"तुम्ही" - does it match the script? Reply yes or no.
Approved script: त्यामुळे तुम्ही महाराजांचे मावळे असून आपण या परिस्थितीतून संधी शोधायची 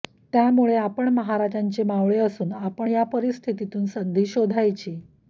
no